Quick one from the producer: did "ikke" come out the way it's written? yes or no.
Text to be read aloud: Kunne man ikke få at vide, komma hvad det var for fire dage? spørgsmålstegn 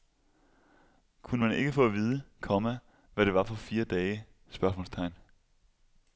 yes